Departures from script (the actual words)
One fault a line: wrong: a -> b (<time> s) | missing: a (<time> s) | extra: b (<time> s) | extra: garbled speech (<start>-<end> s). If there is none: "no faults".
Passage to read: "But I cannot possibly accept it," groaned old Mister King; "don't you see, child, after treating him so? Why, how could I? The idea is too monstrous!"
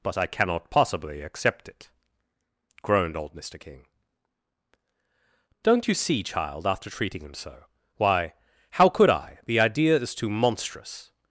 no faults